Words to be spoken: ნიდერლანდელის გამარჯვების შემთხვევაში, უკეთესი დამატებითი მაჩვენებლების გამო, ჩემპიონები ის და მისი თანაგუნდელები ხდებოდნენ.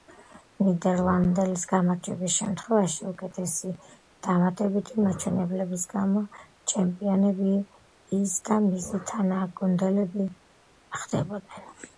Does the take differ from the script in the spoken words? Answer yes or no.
no